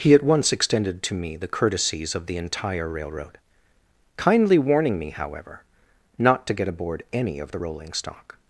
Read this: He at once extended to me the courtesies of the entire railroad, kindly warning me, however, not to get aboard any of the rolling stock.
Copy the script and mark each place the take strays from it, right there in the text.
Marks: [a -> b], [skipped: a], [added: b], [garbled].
He at once extended to me the courtesies of the entire railroad, kindly warning me, however, not to get aboard any of the rolling stock.